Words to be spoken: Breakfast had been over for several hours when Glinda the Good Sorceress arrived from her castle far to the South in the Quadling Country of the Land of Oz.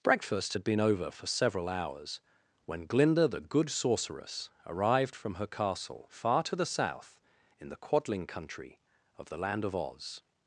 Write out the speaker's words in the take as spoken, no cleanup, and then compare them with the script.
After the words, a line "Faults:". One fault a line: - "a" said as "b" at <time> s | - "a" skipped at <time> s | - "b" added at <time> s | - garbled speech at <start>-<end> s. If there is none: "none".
Breakfast had been over for several hours when Glinda the Good Sorceress arrived from her castle far to the South in the Quadling Country of the Land of Oz.
Faults:
none